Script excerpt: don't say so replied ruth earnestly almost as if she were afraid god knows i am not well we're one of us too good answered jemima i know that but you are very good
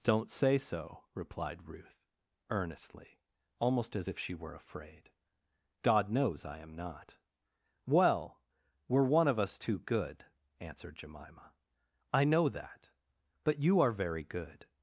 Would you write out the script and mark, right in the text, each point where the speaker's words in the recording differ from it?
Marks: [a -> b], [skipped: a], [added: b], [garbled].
don't say so replied ruth earnestly almost as if she were afraid god knows i am not well we're one of us too good answered jemima i know that but you are very good